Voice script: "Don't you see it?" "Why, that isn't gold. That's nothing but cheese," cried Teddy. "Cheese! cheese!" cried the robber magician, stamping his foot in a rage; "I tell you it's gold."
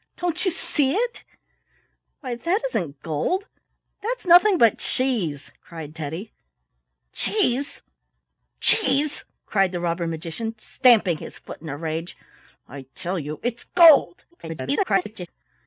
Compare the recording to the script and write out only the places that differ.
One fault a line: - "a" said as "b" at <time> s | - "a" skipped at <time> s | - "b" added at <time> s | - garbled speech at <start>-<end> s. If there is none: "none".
- garbled speech at 14.3-15.3 s